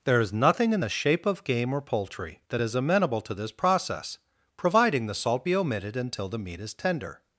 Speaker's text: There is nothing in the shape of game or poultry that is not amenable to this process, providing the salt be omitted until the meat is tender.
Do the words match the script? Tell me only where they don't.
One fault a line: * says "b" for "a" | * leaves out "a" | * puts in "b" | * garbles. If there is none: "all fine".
* leaves out "not"